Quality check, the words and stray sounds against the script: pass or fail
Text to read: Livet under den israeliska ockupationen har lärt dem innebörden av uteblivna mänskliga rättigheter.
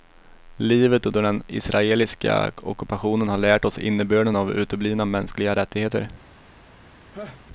fail